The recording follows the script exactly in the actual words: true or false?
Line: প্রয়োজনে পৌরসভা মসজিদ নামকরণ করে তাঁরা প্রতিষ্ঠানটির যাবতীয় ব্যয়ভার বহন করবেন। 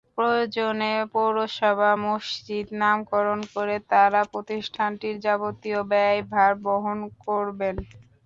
true